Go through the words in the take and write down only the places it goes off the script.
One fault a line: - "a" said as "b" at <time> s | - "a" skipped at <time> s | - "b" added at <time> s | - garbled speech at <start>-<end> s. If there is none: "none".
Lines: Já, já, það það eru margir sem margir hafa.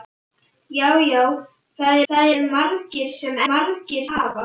none